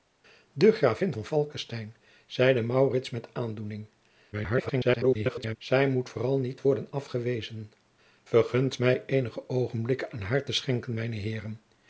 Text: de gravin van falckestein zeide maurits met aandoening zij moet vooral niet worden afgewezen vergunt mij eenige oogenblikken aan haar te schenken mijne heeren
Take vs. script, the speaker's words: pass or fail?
fail